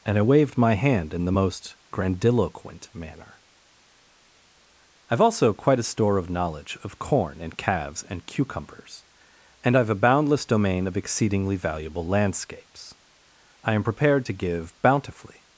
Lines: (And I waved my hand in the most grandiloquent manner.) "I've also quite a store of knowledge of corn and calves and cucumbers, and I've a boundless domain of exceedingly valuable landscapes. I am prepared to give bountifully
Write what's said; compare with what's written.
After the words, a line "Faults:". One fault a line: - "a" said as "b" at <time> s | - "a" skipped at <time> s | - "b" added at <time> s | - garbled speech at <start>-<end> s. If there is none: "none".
(And I waved my hand in the most grandiloquent manner.) "I've also quite a store of knowledge of corn and calves and cucumbers, and I've a boundless domain of exceedingly valuable landscapes. I am prepared to give bountifully
Faults:
none